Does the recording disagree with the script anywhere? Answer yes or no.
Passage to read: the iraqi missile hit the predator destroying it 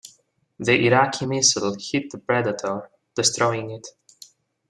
no